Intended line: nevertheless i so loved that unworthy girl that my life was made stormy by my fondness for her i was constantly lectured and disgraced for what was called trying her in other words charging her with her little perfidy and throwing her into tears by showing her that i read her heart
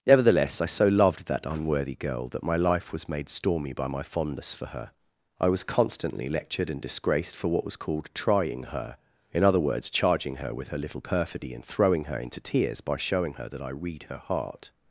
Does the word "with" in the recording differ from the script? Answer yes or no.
no